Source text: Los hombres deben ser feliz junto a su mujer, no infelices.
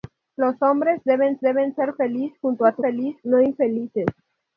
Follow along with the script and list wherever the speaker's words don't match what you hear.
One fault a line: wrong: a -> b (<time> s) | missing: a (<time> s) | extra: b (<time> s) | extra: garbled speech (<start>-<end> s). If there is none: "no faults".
extra: deben (1.4 s)
wrong: mujer -> feliz (2.8 s)